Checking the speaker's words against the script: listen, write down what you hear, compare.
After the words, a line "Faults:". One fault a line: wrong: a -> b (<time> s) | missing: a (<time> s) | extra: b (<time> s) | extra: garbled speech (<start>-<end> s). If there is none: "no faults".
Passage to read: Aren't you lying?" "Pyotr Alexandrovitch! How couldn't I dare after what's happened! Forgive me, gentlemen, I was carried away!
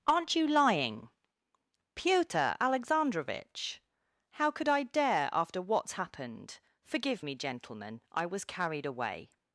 Aren't you lying?" "Pyotr Alexandrovitch! How could I dare after what's happened! Forgive me, gentlemen, I was carried away!
Faults:
wrong: couldn't -> could (4.5 s)